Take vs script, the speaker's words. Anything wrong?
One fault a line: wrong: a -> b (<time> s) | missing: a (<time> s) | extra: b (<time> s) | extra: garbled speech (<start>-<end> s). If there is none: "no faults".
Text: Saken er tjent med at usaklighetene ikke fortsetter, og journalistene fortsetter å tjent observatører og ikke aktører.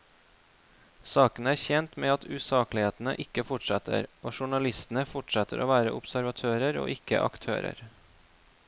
wrong: tjent -> være (5.7 s)